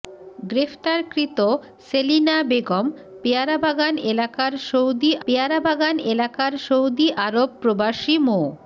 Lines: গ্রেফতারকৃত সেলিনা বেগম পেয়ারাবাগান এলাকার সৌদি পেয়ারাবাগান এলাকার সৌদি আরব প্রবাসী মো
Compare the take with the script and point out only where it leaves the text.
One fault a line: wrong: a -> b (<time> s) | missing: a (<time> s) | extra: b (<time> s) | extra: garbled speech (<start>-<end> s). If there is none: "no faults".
no faults